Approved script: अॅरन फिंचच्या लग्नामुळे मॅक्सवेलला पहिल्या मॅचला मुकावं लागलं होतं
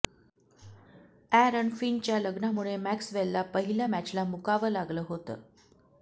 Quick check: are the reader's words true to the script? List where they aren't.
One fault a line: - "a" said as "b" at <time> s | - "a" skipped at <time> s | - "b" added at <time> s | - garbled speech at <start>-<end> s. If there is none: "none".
none